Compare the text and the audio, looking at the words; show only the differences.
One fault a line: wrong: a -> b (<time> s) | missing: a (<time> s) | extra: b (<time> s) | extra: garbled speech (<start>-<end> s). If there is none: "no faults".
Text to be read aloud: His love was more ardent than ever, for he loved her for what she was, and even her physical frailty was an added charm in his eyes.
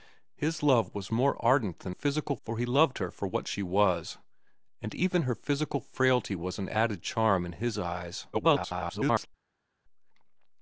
wrong: ever -> physical (1.9 s)
extra: garbled speech (8.3-9.3 s)